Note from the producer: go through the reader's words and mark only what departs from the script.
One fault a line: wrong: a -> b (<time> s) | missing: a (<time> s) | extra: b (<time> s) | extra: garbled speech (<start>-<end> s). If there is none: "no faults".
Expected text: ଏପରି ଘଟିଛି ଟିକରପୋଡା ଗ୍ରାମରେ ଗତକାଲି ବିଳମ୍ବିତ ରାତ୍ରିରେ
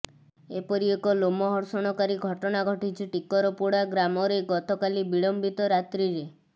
extra: ଏକ ଲୋମହର୍ଷଣକାରୀ ଘଟଣା (0.9 s)